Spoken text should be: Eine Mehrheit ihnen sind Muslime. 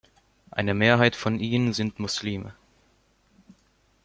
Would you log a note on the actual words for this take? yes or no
yes